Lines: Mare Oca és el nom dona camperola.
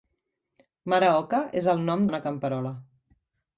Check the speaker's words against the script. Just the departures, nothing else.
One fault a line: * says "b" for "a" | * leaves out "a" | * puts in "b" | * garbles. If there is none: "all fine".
all fine